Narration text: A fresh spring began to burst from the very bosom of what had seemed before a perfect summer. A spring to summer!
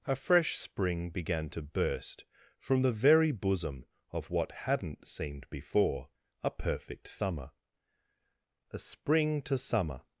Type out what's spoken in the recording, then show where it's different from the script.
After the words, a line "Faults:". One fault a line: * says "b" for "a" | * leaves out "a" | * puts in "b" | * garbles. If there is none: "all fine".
A fresh spring began to burst from the very bosom of what hadn't seemed before a perfect summer. A spring to summer!
Faults:
* says "hadn't" for "had"